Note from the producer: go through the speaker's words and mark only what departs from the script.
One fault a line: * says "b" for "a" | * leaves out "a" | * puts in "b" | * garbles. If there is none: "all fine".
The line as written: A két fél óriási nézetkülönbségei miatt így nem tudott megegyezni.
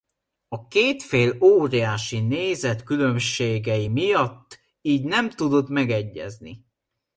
all fine